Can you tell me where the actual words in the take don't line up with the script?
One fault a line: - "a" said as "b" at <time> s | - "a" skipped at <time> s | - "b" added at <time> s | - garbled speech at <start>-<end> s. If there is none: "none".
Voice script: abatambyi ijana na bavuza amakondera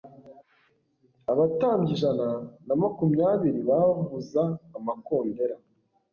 - "makumyabiri" added at 2.8 s